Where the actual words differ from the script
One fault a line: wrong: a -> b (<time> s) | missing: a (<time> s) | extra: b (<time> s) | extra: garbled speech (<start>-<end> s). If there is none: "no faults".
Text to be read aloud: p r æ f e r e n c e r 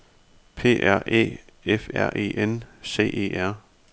missing: e (1.9 s)